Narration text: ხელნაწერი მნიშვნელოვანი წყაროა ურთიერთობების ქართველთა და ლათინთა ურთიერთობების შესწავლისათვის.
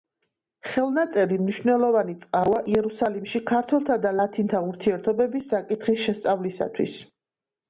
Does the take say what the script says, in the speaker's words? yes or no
no